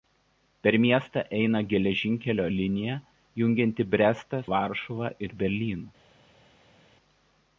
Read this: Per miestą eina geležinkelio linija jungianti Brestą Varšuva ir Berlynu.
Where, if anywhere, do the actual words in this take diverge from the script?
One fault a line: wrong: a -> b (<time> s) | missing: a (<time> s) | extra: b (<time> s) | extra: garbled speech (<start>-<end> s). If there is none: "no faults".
no faults